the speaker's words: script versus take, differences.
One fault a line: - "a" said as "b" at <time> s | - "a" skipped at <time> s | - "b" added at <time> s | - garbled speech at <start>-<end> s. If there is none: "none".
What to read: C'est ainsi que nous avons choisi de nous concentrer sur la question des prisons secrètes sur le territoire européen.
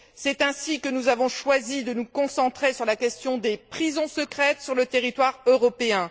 none